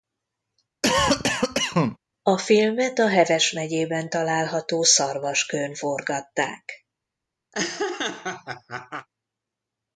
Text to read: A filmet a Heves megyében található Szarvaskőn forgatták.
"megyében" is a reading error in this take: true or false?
false